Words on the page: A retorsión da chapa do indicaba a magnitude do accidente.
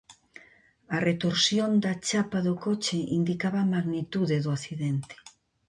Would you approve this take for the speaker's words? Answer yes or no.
no